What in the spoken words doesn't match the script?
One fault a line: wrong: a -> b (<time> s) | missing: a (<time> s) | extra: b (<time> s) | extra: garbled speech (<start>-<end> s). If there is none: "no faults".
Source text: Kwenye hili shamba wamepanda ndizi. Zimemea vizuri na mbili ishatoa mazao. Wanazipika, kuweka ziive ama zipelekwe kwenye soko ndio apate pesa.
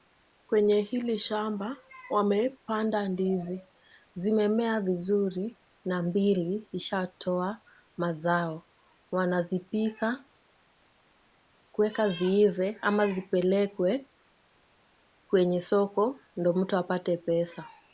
extra: mtu (16.5 s)